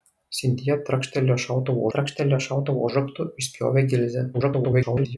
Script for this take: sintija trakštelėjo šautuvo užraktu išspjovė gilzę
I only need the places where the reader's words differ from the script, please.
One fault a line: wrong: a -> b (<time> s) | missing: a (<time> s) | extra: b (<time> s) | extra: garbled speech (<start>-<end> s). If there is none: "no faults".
extra: trakštelėjo šautuvo (1.9 s)
extra: garbled speech (4.3-5.2 s)